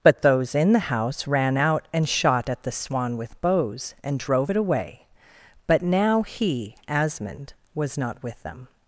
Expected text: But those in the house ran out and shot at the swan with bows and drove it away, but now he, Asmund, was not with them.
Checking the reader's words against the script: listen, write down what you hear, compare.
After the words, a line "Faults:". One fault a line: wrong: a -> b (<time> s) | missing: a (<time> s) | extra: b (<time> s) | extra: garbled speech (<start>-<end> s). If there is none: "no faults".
But those in the house ran out and shot at the swan with bows and drove it away, but now he, Asmund, was not with them.
Faults:
no faults